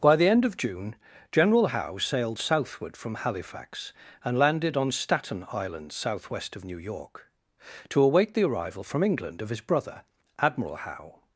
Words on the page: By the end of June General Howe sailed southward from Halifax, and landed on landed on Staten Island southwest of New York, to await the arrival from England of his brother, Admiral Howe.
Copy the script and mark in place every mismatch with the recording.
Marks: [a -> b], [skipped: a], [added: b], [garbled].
By the end of June General Howe sailed southward from Halifax, and landed on [skipped: landed on] Staten Island southwest of New York, to await the arrival from England of his brother, Admiral Howe.